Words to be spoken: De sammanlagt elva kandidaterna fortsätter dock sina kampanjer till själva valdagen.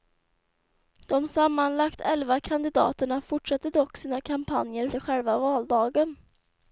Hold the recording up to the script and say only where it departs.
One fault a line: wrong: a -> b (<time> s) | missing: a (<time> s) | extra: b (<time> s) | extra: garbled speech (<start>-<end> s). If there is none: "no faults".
no faults